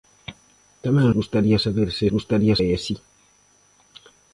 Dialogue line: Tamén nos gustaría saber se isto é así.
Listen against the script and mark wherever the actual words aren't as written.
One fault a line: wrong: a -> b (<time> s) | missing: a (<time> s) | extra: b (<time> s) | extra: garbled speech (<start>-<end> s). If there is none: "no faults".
missing: nos (1.1 s)
wrong: isto -> gustaría (2.1 s)